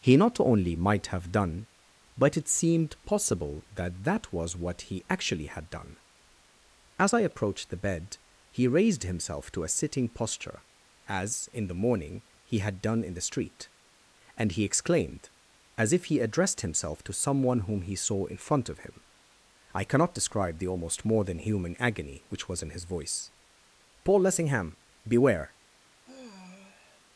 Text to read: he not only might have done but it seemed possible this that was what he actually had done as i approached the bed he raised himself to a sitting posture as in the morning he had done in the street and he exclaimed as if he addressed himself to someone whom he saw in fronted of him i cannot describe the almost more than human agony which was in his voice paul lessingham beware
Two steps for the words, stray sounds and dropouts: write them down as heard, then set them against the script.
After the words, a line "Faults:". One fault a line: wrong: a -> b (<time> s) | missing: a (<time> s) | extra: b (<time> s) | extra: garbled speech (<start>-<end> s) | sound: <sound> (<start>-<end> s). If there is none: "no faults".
he not only might have done but it seemed possible that that was what he actually had done as i approached the bed he raised himself to a sitting posture as in the morning he had done in the street and he exclaimed as if he addressed himself to someone whom he saw in front of him i cannot describe the almost more than human agony which was in his voice paul lessingham beware
Faults:
wrong: this -> that (3.7 s)
wrong: fronted -> front (18.4 s)
sound: sigh (26.0-27.0 s)